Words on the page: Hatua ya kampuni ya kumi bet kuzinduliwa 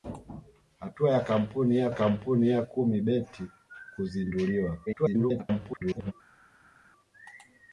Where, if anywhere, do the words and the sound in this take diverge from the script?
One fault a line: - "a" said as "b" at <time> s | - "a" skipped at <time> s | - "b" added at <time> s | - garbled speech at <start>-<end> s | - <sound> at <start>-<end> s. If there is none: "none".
- "kampuni ya" added at 1.9 s
- garbled speech at 4.9-6.1 s